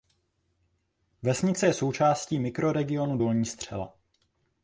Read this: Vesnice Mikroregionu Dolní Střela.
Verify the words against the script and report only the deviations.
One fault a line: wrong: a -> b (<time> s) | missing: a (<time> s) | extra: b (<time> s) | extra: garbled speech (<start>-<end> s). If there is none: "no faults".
extra: je součástí (1.6 s)